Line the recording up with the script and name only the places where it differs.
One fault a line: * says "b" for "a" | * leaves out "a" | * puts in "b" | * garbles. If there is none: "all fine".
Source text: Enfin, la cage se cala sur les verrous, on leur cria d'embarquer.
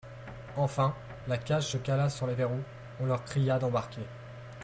all fine